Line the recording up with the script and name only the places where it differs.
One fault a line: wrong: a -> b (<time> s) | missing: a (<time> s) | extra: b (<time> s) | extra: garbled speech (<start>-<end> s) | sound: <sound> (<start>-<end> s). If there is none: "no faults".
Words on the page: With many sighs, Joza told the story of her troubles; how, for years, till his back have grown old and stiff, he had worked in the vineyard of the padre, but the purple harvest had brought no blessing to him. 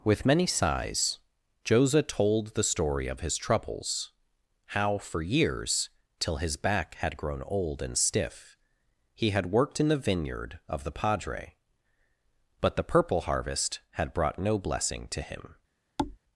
wrong: her -> his (3.2 s)
wrong: have -> had (7.0 s)
sound: thud (16.0-16.2 s)